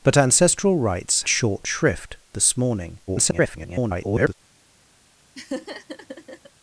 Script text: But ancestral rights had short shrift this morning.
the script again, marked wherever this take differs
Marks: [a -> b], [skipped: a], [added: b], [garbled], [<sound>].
But ancestral rights [skipped: had] short shrift this morning. [garbled] [laugh]